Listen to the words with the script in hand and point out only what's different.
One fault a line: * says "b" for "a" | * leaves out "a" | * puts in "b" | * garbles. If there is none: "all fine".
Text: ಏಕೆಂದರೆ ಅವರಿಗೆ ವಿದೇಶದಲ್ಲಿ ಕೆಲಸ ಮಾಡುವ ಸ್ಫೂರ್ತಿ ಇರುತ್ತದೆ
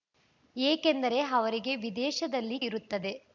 * leaves out "ಕೆಲಸ ಮಾಡುವ ಸ್ಫೂರ್ತಿ"